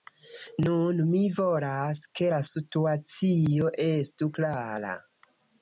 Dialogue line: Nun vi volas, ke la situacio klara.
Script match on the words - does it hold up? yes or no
no